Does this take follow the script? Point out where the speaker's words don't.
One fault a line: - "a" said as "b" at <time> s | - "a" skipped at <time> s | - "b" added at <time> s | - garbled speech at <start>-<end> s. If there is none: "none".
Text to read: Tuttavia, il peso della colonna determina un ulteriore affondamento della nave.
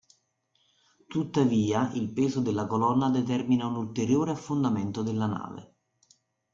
none